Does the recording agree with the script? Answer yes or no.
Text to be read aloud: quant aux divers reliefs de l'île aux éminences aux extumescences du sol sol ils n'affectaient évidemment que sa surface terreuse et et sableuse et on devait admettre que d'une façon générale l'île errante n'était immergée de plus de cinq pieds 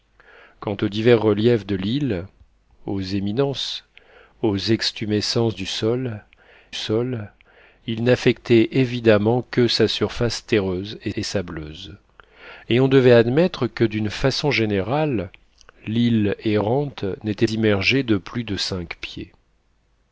yes